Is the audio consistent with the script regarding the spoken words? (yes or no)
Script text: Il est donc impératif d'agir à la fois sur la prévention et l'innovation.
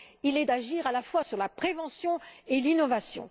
no